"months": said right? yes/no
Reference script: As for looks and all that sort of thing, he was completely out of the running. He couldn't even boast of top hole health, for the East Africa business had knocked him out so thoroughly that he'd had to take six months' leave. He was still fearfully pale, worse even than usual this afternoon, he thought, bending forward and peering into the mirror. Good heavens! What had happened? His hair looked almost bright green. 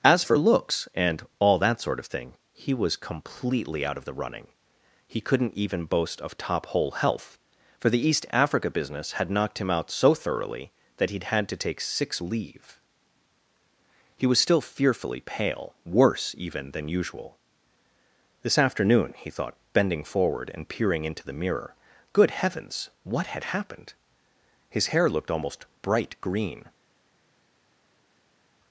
no